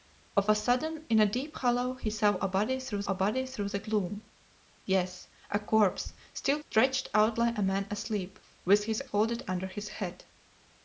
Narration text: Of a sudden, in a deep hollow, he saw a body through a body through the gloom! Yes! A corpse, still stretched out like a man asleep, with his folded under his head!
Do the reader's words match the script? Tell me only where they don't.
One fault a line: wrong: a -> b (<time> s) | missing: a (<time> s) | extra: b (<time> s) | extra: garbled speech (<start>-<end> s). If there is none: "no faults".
no faults